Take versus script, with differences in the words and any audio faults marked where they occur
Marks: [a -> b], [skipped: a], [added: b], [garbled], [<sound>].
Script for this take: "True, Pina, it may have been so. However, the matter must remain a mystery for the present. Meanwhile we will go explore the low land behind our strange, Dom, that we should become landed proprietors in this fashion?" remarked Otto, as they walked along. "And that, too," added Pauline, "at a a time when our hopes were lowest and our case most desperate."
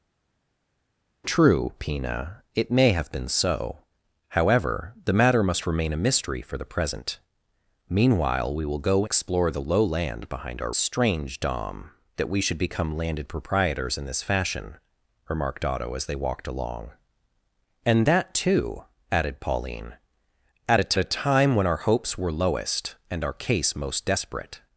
"True, Pina, it may have been so. However, the matter must remain a mystery for the present. Meanwhile we will go explore the low land behind our strange, Dom, that we should become landed proprietors in this fashion?" remarked Otto, as they walked along. "And that, too," added Pauline, "at a a time when our hopes were lowest and our case most desperate."